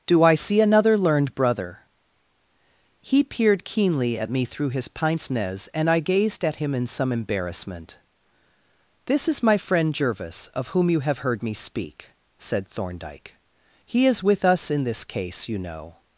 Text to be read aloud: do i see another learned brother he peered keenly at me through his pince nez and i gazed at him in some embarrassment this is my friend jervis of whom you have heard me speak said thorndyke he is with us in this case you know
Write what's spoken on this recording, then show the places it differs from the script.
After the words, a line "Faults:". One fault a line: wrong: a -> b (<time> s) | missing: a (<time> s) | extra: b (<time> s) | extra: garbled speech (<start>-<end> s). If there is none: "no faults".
do i see another learned brother he peered keenly at me through his pince nez and i gazed at him in some embarrassment this is my friend jervis of whom you have heard me speak said thorndyke he is with us in this case you know
Faults:
no faults